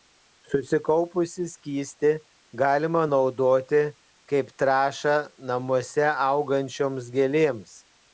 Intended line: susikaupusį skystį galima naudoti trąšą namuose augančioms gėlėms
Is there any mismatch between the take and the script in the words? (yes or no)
yes